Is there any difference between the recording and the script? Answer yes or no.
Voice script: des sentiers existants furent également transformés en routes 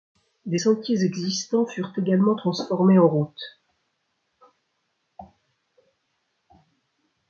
no